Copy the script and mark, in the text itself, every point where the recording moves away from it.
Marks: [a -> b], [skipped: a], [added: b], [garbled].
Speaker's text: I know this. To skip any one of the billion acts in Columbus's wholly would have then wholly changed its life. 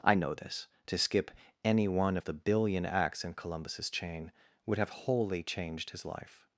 I know this. To skip any one of the billion acts in Columbus's [wholly -> chain] would have [skipped: then] wholly changed [its -> his] life.